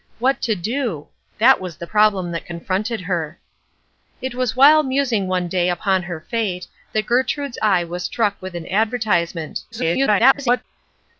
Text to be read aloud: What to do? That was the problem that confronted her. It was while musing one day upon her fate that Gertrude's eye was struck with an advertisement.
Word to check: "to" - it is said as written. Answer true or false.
true